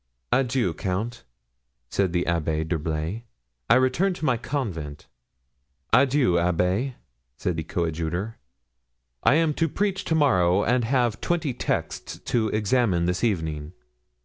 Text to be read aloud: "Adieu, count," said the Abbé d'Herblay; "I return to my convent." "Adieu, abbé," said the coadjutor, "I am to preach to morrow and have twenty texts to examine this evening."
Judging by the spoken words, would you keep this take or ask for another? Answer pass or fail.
pass